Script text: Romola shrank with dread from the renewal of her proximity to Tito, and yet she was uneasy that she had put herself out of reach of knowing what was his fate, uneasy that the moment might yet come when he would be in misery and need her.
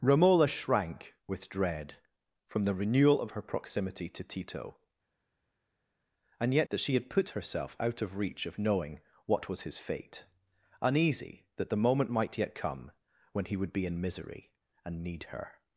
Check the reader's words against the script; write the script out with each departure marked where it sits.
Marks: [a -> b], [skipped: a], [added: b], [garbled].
Romola shrank with dread from the renewal of her proximity to Tito, and yet [skipped: she was uneasy] that she had put herself out of reach of knowing what was his fate, uneasy that the moment might yet come when he would be in misery and need her.